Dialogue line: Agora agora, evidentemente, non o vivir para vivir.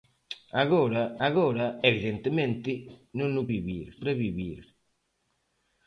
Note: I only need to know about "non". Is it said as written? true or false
true